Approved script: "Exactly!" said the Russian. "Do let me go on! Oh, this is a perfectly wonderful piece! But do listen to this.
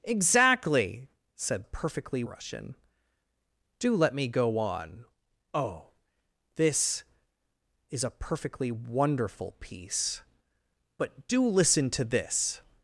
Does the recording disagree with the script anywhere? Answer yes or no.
yes